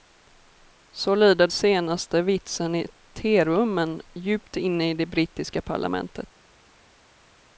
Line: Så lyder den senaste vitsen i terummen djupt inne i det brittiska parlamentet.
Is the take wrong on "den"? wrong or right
wrong